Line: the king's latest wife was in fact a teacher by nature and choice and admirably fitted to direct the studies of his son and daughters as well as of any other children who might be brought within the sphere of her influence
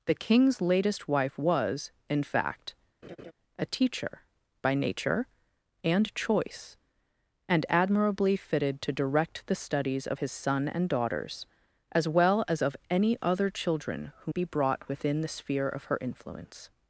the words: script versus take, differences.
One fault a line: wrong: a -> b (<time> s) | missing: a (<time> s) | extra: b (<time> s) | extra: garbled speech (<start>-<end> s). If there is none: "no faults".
missing: might (14.3 s)